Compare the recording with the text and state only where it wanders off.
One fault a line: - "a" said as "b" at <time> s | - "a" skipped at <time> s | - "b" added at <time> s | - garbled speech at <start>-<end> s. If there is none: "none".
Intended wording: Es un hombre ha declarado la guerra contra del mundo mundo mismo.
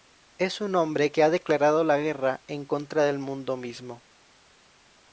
- "que" added at 1.1 s
- "en" added at 2.5 s
- "mundo" skipped at 3.6 s